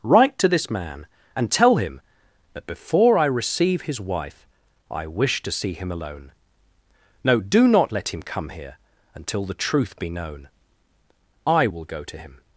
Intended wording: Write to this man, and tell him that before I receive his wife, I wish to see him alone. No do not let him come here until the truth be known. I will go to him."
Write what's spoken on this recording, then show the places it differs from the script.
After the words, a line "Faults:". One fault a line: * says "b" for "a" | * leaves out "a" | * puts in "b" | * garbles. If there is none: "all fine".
Write to this man, and tell him that before I receive his wife, I wish to see him alone. No do not let him come here until the truth be known. I will go to him."
Faults:
all fine